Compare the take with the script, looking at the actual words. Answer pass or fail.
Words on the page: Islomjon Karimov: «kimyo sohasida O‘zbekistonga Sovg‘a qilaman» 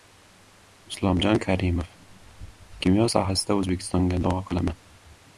pass